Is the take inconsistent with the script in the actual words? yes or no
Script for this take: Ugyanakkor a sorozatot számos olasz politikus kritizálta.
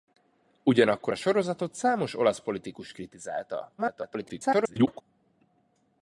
yes